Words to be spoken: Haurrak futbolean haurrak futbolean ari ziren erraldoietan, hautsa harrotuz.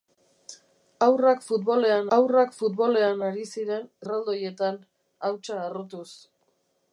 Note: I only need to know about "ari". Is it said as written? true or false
true